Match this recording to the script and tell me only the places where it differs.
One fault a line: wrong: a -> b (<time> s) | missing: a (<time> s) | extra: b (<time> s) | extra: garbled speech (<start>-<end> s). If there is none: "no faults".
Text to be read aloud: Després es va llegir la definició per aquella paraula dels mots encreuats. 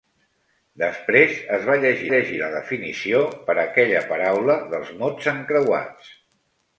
extra: llegir (2.1 s)